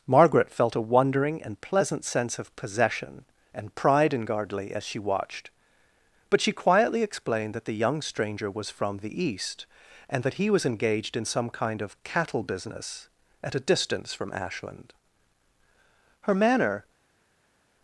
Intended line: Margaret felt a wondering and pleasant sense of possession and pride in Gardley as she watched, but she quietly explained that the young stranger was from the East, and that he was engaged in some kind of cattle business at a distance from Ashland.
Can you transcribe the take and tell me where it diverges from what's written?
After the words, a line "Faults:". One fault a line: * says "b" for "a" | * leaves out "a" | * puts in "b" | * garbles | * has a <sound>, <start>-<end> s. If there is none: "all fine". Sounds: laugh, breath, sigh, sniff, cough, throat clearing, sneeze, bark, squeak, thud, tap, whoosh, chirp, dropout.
Margaret felt a wondering and pleasant sense of possession and pride in Gardley as she watched, but she quietly explained that the young stranger was from the East, and that he was engaged in some kind of cattle business at a distance from Ashland. Her manner
Faults:
* puts in "Her manner"